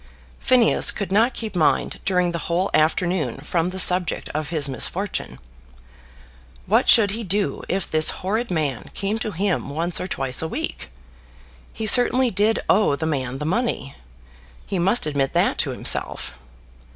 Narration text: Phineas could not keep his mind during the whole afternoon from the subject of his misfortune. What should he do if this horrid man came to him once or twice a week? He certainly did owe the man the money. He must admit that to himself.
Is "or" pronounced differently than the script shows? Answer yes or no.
no